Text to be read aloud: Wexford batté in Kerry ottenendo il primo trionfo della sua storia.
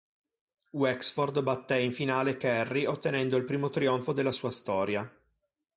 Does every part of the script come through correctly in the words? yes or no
no